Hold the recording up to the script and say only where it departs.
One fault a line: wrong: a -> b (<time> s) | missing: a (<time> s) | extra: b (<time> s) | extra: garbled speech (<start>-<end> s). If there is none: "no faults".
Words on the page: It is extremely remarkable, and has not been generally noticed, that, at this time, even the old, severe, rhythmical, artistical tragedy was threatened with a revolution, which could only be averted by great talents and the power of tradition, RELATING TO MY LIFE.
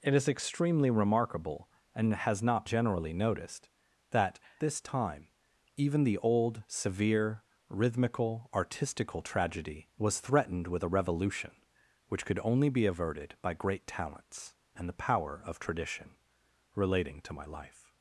missing: been (2.6 s)
missing: at (4.4 s)